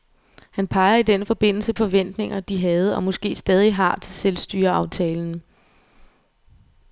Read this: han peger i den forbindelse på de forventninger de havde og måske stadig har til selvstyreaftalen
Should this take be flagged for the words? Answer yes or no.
yes